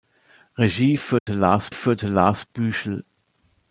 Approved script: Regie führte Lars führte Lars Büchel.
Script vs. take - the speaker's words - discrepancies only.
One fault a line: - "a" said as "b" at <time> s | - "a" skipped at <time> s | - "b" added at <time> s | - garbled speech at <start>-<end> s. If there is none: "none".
none